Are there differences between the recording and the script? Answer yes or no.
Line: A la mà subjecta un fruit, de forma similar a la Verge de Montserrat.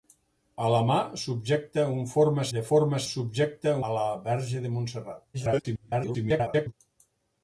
yes